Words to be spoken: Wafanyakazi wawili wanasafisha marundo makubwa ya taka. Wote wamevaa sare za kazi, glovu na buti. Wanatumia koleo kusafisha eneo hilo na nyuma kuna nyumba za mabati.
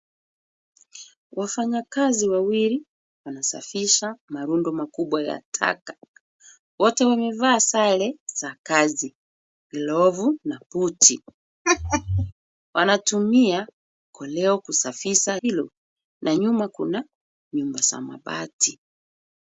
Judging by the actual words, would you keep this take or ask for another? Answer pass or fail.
fail